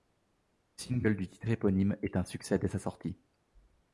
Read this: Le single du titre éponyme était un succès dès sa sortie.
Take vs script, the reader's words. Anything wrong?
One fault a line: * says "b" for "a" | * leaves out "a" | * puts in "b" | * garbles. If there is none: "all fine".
* says "est" for "était"